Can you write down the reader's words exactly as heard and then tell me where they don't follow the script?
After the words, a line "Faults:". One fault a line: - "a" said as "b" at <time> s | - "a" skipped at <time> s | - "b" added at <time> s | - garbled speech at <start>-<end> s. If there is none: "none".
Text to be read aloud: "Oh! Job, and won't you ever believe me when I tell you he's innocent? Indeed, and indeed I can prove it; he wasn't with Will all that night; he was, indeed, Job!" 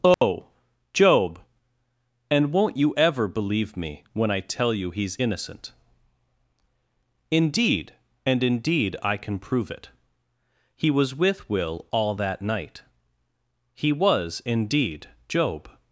"Oh! Job, and won't you ever believe me when I tell you he's innocent? Indeed, and indeed I can prove it; he was with Will all that night; he was, indeed, Job!"
Faults:
- "wasn't" said as "was" at 10.9 s